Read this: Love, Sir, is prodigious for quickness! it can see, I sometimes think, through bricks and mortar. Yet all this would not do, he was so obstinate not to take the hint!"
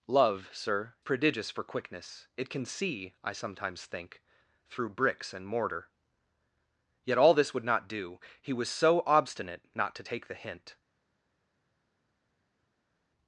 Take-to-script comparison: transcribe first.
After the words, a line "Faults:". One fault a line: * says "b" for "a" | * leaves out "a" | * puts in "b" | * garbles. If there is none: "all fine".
Love, Sir, prodigious for quickness! it can see, I sometimes think, through bricks and mortar. Yet all this would not do, he was so obstinate not to take the hint!"
Faults:
* leaves out "is"